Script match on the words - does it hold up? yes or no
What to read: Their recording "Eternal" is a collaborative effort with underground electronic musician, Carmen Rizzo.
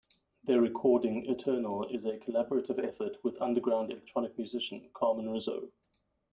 yes